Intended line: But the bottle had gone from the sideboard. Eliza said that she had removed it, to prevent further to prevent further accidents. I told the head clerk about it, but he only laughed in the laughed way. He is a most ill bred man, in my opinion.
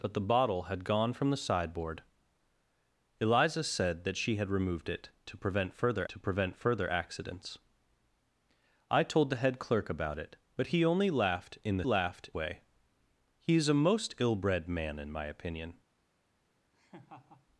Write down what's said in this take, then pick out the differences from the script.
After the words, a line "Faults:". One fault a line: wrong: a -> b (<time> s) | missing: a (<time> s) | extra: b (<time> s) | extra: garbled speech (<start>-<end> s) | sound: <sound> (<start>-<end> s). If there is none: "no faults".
But the bottle had gone from the sideboard. Eliza said that she had removed it, to prevent further to prevent further accidents. I told the head clerk about it, but he only laughed in the laughed way. He is a most ill bred man, in my opinion.
Faults:
sound: laugh (16.7-17.5 s)